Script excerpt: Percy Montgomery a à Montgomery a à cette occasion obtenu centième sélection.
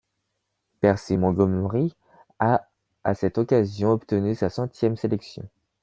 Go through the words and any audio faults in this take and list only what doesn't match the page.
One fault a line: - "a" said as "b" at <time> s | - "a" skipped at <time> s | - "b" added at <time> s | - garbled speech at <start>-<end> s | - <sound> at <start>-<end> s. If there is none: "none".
- "Montgomery a à" skipped at 3.1 s
- "sa" added at 4.3 s